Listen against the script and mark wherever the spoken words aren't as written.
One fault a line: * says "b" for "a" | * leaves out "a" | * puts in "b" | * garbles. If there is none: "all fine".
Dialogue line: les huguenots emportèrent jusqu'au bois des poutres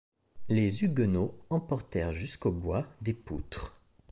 all fine